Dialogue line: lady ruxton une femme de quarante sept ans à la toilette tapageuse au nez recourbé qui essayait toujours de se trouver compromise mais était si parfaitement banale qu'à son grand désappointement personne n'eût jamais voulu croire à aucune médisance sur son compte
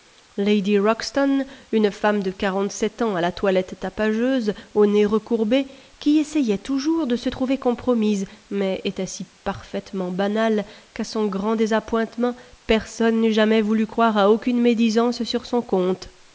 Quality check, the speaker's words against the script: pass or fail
pass